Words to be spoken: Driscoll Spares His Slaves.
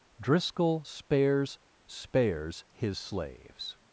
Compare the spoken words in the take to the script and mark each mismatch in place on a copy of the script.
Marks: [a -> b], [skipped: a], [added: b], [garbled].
Driscoll Spares [added: Spares] His Slaves.